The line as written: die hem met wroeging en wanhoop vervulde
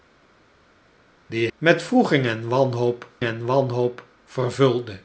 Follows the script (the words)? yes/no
no